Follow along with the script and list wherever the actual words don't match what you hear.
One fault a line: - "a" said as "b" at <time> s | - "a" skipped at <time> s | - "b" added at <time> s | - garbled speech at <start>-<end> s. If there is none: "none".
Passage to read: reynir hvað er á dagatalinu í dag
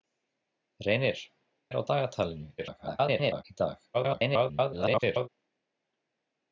- "hvað" skipped at 1.2 s
- garbled speech at 2.6-3.4 s
- garbled speech at 3.9-5.3 s